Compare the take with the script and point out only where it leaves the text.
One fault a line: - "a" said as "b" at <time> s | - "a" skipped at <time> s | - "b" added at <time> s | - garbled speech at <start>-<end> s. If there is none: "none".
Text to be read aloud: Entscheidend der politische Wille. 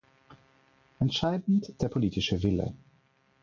none